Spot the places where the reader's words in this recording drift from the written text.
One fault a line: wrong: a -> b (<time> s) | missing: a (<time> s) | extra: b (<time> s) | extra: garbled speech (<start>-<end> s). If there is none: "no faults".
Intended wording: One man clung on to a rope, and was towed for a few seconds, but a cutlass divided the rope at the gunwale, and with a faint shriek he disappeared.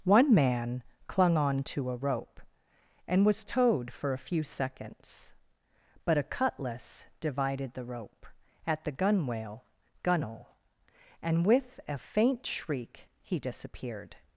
extra: gunwale (10.0 s)